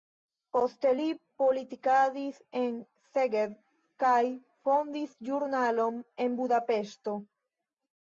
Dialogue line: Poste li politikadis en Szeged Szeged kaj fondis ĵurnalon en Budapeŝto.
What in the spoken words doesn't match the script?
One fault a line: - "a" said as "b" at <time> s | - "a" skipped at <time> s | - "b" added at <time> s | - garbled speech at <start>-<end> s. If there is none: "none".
- "Szeged" skipped at 3.6 s